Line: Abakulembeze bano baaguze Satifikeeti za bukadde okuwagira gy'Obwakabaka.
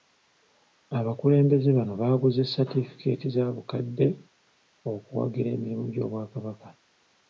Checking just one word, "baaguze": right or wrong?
right